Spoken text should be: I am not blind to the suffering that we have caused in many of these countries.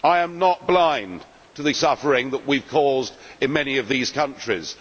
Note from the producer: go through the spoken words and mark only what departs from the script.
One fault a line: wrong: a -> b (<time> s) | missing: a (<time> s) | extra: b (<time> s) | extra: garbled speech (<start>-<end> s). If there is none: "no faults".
no faults